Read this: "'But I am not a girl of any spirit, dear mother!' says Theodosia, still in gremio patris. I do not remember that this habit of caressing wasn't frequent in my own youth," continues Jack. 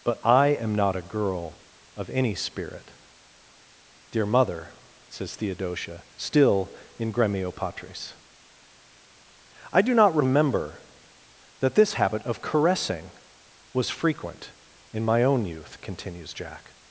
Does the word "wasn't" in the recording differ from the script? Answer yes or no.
yes